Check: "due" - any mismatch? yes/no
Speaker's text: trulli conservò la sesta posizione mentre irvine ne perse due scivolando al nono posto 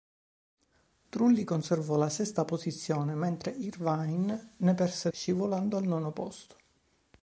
yes